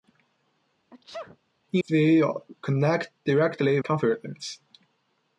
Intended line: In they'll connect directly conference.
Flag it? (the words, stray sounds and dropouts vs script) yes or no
yes